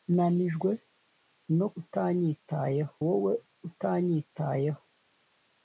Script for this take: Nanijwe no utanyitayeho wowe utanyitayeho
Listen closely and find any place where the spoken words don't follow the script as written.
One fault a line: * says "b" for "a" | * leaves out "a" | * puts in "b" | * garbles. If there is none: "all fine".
all fine